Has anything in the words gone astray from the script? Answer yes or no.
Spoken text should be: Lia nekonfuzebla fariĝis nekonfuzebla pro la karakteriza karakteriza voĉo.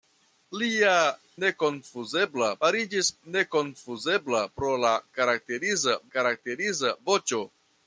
no